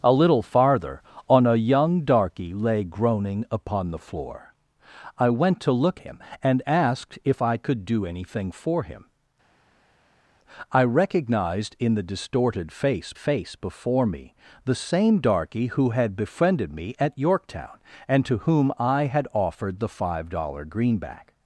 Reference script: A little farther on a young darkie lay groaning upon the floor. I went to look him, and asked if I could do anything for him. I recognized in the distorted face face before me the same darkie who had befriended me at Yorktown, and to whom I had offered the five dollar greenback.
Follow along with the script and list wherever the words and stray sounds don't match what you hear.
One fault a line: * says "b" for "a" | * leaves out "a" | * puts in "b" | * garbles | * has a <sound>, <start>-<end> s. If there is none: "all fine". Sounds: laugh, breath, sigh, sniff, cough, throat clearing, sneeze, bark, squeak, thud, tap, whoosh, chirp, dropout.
all fine